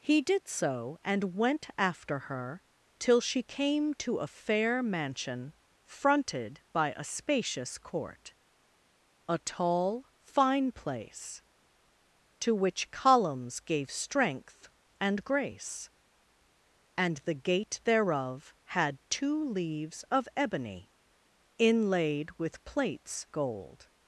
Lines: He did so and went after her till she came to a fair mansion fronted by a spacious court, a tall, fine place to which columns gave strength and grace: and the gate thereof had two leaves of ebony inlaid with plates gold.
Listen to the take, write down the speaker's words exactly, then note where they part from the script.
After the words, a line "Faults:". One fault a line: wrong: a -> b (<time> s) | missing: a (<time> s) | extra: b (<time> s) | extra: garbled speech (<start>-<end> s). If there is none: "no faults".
He did so and went after her till she came to a fair mansion fronted by a spacious court, a tall, fine place to which columns gave strength and grace: and the gate thereof had two leaves of ebony inlaid with plates gold.
Faults:
no faults